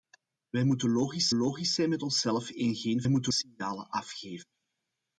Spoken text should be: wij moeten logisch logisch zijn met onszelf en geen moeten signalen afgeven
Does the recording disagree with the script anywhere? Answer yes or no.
no